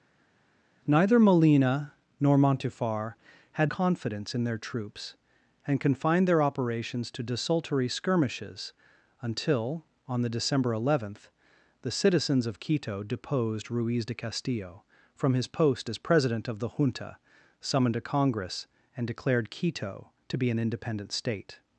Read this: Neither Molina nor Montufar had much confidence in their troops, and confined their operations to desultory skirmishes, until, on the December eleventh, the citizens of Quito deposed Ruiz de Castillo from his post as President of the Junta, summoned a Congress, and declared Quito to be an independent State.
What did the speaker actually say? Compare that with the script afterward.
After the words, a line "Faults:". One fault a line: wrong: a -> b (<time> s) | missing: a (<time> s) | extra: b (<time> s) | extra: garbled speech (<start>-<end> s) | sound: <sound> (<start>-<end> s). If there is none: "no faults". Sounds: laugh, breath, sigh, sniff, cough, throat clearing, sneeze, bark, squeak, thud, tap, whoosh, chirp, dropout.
Neither Molina nor Montufar had confidence in their troops, and confined their operations to desultory skirmishes, until, on the December eleventh, the citizens of Quito deposed Ruiz de Castillo from his post as President of the Junta, summoned a Congress, and declared Quito to be an independent State.
Faults:
missing: much (3.7 s)